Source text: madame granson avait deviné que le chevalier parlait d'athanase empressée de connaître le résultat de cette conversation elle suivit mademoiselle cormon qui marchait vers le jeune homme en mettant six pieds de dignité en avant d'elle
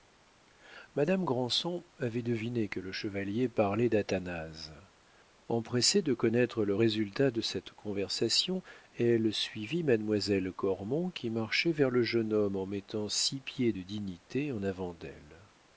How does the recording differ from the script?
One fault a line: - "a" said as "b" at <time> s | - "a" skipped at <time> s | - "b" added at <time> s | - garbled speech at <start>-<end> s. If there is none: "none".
none